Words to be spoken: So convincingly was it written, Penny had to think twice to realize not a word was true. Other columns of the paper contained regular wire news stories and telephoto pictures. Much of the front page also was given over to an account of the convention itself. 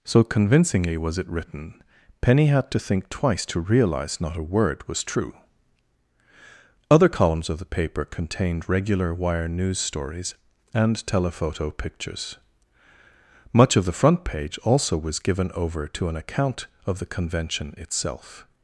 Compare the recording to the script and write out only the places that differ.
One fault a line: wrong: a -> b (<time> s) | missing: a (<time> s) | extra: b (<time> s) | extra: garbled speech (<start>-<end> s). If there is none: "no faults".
no faults